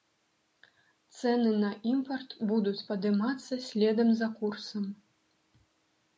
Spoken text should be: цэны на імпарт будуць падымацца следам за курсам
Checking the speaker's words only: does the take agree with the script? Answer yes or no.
yes